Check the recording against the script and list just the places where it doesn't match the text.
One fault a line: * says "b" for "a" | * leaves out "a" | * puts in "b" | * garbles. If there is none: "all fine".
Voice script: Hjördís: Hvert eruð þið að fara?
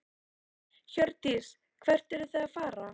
all fine